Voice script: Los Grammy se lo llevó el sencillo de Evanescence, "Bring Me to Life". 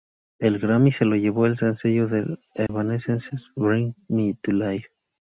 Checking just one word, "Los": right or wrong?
wrong